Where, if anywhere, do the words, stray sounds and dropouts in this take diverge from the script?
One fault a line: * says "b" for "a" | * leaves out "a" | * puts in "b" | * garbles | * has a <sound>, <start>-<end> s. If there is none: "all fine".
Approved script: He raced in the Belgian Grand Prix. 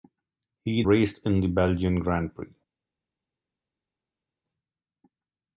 all fine